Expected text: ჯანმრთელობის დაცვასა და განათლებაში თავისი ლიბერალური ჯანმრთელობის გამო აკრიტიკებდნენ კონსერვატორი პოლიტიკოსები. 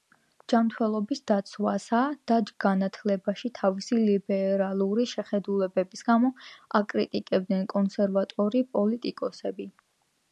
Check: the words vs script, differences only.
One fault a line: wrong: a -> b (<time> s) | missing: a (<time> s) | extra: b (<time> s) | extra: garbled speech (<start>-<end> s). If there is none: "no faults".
wrong: ჯანმრთელობის -> შეხედულებების (5.2 s)